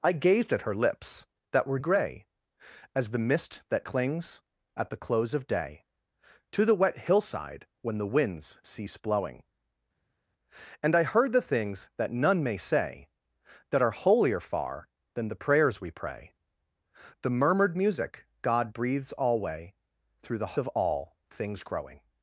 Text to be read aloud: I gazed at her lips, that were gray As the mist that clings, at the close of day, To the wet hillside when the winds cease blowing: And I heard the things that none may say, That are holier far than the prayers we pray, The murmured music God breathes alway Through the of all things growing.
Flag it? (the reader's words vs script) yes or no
no